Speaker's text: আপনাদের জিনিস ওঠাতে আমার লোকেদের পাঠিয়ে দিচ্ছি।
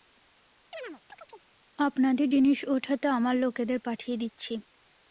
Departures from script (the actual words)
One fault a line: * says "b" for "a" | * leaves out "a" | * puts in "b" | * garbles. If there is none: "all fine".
all fine